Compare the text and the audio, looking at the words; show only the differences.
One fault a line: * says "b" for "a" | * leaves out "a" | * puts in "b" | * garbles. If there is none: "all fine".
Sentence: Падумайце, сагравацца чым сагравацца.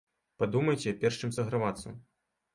* says "перш" for "сагравацца"